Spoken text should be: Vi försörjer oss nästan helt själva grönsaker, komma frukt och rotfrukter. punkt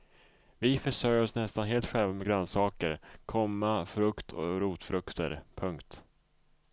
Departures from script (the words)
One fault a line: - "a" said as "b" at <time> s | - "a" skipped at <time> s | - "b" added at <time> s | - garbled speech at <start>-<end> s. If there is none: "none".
- "med" added at 2.1 s